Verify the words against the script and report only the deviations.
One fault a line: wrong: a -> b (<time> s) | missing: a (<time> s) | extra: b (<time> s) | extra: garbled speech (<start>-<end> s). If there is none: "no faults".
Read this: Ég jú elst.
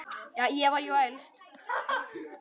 extra: var (0.7 s)